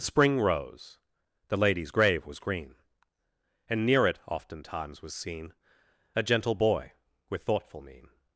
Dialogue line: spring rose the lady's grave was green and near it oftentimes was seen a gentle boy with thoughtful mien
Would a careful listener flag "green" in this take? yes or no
no